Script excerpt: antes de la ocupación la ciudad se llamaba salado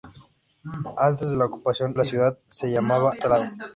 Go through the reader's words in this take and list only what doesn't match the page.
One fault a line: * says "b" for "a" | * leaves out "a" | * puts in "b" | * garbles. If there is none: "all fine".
all fine